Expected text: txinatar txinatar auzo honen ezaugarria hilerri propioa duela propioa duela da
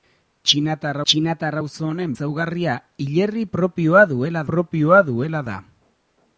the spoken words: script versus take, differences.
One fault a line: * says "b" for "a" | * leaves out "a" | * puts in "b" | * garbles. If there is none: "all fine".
all fine